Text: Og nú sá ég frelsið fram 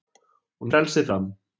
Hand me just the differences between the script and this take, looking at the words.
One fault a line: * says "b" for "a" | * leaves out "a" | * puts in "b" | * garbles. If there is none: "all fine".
* leaves out "nú sá ég"